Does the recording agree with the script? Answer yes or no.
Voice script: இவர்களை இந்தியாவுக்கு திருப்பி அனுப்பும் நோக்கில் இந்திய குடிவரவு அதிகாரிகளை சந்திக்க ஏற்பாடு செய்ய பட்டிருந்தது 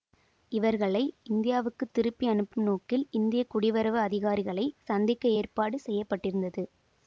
yes